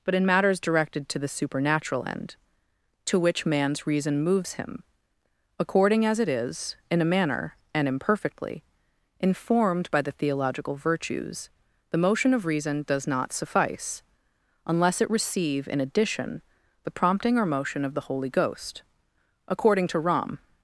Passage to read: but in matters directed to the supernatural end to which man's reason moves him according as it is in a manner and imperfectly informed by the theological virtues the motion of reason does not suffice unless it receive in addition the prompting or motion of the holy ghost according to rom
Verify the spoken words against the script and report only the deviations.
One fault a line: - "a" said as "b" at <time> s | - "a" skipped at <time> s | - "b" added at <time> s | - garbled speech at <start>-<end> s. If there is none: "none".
none